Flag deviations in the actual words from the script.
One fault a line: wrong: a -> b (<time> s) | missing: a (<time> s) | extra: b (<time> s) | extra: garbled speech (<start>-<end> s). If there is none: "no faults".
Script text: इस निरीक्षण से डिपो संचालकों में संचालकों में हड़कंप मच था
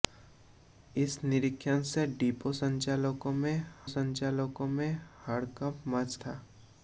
no faults